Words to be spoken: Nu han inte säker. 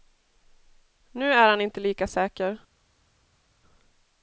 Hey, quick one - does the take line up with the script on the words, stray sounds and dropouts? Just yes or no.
no